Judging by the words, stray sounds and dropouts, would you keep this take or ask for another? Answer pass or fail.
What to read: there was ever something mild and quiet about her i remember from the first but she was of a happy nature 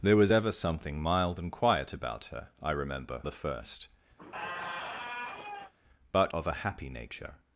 fail